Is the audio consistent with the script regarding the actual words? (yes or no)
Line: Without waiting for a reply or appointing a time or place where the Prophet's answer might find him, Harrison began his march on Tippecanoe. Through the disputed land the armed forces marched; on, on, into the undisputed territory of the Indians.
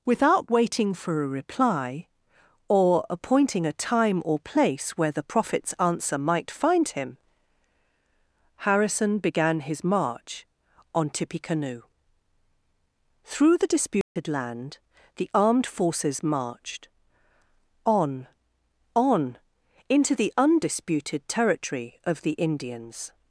yes